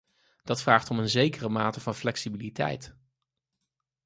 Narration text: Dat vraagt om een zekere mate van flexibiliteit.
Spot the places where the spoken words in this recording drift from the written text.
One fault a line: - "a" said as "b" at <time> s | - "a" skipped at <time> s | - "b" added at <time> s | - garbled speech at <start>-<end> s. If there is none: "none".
none